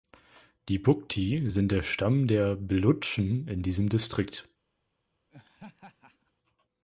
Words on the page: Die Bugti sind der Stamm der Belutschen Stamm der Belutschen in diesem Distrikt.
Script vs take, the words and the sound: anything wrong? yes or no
yes